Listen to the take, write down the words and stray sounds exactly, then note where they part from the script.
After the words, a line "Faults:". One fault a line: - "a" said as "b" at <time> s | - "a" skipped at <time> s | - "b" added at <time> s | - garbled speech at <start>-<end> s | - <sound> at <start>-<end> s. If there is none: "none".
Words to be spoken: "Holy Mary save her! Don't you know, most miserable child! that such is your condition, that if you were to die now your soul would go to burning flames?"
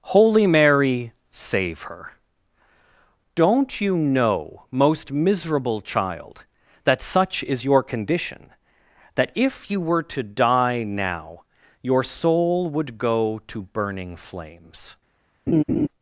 "Holy Mary save her! Don't you know, most miserable child! that such is your condition, that if you were to die now your soul would go to burning flames?"
Faults:
- laugh at 15.5-15.9 s